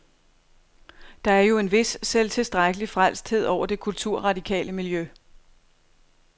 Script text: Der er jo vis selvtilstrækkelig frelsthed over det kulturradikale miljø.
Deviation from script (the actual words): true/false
true